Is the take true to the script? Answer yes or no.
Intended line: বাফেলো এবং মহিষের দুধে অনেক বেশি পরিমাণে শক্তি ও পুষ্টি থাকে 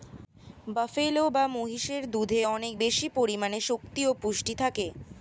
no